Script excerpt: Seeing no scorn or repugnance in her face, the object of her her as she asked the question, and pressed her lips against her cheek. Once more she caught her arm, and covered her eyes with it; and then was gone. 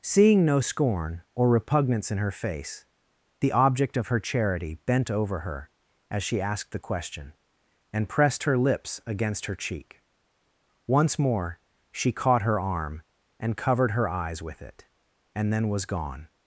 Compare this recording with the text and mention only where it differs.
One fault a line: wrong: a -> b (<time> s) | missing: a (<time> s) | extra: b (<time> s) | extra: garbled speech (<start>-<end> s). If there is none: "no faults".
extra: charity bent over (4.2 s)